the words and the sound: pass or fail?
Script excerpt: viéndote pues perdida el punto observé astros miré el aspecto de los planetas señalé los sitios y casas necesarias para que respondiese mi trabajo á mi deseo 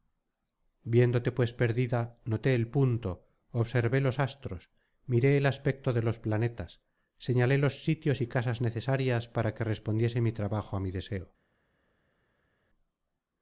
fail